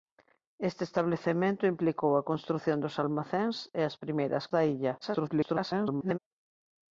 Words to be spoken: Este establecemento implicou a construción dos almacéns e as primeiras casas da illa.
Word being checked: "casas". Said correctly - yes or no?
no